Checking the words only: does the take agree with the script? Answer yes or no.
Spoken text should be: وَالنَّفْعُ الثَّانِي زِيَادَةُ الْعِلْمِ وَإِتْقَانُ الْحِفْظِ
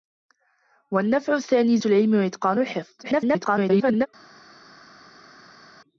no